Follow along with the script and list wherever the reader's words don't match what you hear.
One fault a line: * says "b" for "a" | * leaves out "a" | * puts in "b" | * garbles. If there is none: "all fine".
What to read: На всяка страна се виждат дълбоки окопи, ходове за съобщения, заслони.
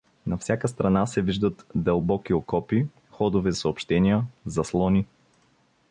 * leaves out "за"